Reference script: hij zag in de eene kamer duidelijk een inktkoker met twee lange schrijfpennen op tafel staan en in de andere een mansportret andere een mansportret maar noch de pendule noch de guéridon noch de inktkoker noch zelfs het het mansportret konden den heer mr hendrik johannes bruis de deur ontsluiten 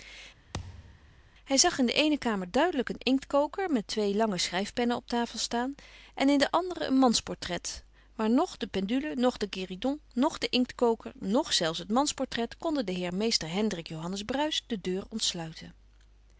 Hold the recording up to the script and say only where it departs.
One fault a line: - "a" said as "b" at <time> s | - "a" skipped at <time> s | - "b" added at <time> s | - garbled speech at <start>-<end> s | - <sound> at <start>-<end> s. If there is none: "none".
- thud at 0.5-1.2 s
- "andere een mansportret" skipped at 7.8 s
- "het" skipped at 11.9 s